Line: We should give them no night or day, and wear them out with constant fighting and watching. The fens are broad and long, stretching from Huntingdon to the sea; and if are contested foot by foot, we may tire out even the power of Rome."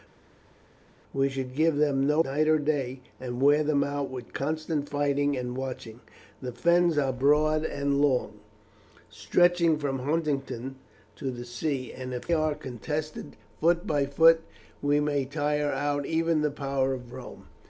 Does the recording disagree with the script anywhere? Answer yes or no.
no